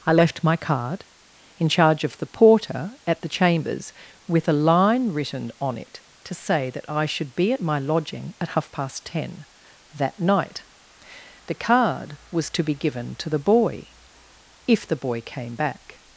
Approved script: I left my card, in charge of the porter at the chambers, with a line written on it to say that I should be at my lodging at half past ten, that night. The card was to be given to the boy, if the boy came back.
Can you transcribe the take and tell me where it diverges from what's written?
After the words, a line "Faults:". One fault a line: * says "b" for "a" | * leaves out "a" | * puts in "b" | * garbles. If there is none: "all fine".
I left my card, in charge of the porter at the chambers, with a line written on it to say that I should be at my lodging at half past ten, that night. The card was to be given to the boy, if the boy came back.
Faults:
all fine